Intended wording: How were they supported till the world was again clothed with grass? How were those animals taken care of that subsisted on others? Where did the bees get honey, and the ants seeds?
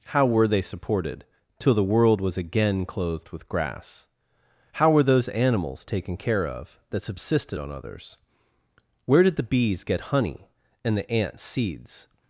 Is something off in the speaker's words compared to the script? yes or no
no